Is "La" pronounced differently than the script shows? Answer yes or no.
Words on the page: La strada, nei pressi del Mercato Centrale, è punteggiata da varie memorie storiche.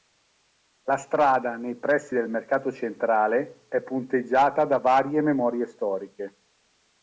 no